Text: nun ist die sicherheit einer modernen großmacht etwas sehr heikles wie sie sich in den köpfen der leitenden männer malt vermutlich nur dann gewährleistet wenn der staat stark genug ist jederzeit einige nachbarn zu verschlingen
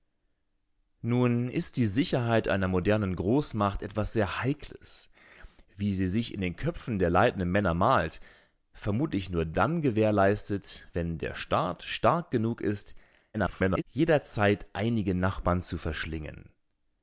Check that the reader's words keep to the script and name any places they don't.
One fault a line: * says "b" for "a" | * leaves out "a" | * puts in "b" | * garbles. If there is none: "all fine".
* garbles